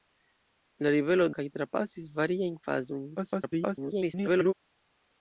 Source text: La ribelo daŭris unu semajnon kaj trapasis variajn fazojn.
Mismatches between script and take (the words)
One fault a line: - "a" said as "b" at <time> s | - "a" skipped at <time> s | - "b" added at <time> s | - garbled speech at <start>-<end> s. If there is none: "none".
- "daŭris unu semajnon" skipped at 1.3 s
- garbled speech at 3.2-4.5 s